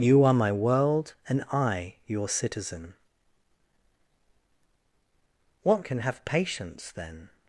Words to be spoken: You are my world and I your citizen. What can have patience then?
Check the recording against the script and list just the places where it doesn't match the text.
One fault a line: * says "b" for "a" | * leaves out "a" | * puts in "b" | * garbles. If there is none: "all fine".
all fine